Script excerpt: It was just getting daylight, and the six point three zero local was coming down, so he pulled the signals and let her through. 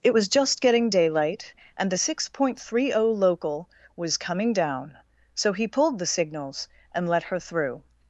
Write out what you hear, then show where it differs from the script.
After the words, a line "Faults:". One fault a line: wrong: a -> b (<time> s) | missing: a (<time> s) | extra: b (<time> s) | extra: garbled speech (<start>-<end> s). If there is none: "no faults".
It was just getting daylight, and the six point three zero local was coming down, so he pulled the signals and let her through.
Faults:
no faults